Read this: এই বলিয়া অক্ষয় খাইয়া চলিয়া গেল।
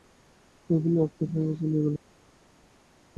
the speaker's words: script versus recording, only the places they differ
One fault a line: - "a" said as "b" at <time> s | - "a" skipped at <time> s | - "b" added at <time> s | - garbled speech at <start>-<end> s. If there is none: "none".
none